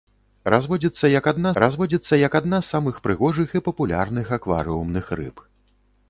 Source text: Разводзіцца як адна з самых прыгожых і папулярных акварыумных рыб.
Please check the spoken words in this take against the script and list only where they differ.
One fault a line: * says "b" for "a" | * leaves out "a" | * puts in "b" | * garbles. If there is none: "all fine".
* puts in "разводзіцца як адна"